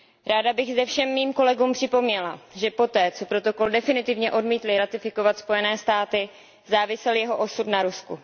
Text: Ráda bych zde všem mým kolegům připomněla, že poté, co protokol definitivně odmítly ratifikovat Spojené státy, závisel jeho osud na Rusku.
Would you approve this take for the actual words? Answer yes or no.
yes